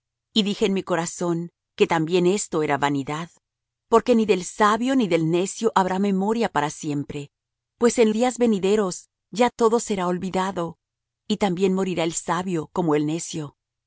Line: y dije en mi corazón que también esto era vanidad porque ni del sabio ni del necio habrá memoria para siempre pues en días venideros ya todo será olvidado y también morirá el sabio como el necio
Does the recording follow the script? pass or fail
pass